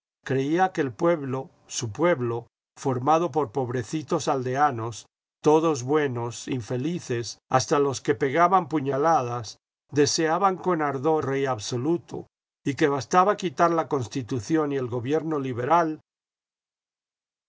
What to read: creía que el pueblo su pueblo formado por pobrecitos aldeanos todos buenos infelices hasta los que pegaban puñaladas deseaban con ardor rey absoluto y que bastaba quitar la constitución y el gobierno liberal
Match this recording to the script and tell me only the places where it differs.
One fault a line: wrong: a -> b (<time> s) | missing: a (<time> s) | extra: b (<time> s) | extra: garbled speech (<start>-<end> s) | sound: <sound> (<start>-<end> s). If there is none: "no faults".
no faults